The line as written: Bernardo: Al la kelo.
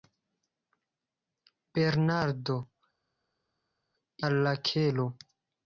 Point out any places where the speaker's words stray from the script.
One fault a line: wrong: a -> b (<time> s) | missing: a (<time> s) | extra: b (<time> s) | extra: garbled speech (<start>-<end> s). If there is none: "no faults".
no faults